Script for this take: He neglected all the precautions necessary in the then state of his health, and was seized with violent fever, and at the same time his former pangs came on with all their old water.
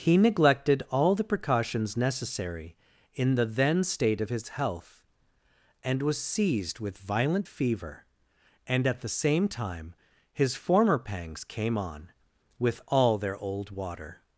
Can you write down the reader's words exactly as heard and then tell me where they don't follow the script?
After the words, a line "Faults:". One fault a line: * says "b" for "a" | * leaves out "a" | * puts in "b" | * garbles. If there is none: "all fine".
He neglected all the precautions necessary in the then state of his health, and was seized with violent fever, and at the same time his former pangs came on with all their old water.
Faults:
all fine